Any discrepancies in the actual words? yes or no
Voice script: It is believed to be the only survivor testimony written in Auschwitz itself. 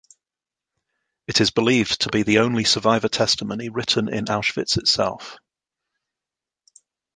no